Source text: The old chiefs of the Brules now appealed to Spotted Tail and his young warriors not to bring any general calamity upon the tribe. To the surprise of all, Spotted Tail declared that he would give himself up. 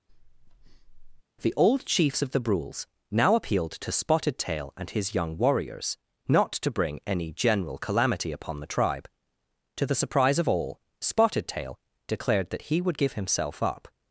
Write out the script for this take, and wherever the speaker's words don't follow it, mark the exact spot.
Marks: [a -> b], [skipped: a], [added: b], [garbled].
The old chiefs of the Brules now appealed to Spotted Tail and his young warriors not to bring any general calamity upon the tribe. To the surprise of all, Spotted Tail declared that he would give himself up.